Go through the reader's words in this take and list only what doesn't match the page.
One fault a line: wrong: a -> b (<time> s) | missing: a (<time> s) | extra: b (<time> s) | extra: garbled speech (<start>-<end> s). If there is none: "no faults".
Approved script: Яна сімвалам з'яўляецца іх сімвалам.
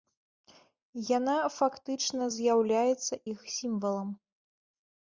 wrong: сімвалам -> фактычна (1.6 s)